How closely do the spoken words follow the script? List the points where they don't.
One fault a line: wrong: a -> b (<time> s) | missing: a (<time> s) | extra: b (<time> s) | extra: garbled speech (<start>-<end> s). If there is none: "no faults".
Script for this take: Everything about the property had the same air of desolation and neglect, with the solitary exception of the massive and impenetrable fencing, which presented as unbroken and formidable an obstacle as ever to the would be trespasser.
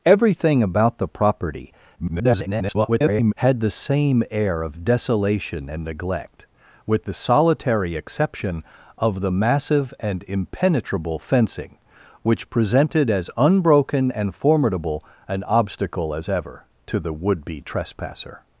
extra: garbled speech (2.0-3.3 s)